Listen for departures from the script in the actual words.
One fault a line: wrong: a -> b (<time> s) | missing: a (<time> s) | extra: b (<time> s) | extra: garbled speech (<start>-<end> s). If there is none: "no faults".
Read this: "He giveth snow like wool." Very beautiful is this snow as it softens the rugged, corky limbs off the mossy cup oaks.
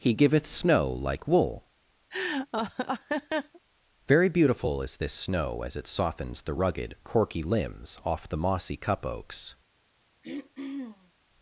no faults